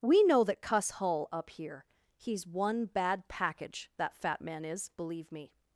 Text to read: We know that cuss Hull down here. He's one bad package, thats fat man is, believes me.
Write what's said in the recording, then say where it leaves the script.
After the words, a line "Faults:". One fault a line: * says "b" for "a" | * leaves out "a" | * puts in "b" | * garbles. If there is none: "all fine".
We know that cuss Hull up here. He's one bad package, that fat man is, believe me.
Faults:
* says "up" for "down"
* says "that" for "thats"
* says "believe" for "believes"